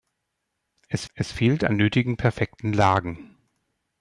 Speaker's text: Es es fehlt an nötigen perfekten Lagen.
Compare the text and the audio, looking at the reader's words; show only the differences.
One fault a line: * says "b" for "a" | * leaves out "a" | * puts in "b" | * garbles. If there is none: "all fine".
all fine